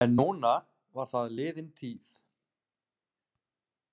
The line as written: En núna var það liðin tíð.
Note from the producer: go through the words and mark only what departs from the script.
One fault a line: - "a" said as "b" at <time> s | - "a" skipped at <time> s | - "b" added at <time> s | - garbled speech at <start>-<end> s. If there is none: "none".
none